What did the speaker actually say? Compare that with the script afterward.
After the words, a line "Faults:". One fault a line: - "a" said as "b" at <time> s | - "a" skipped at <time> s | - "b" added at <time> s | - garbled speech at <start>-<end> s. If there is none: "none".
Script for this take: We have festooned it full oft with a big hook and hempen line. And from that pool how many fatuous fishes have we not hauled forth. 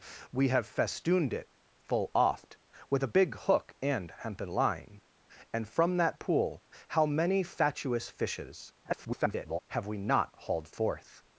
We have festooned it full oft with a big hook and hempen line. And from that pool how many fatuous fishes [garbled] have we not hauled forth.
Faults:
- garbled speech at 8.8-9.6 s